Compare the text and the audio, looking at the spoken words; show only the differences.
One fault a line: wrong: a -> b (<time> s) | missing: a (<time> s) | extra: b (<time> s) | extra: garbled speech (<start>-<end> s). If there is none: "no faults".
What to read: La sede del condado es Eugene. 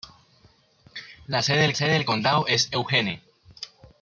extra: sede del (1.8 s)